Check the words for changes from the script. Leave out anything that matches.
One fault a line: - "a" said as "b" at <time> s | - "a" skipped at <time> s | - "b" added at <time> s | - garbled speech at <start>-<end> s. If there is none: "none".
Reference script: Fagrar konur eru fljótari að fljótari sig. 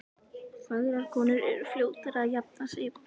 - "fljótari" said as "jafna" at 2.4 s